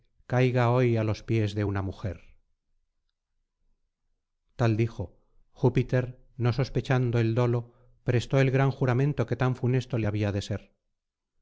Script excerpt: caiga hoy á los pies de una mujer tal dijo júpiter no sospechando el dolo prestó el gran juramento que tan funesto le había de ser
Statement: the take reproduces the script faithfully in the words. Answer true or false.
true